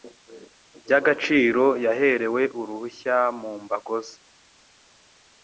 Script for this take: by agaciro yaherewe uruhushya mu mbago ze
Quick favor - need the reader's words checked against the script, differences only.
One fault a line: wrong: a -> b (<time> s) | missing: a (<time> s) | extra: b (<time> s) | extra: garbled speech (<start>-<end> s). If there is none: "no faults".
no faults